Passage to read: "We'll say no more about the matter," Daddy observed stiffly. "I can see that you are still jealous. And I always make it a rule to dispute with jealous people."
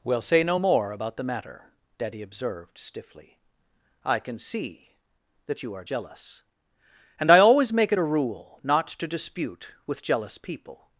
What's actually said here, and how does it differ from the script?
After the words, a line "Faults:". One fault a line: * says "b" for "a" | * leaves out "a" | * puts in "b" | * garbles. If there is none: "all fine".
"We'll say no more about the matter," Daddy observed stiffly. "I can see that you are jealous. And I always make it a rule not to dispute with jealous people."
Faults:
* leaves out "still"
* puts in "not"